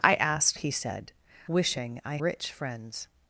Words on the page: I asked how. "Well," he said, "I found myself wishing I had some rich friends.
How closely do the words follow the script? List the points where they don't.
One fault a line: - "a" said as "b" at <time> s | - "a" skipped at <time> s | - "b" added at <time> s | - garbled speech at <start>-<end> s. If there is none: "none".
- "how Well" skipped at 0.6 s
- "I found myself" skipped at 1.1 s
- "had some" skipped at 2.2 s